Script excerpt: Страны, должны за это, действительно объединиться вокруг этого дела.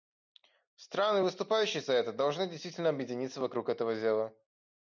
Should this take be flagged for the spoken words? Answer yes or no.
yes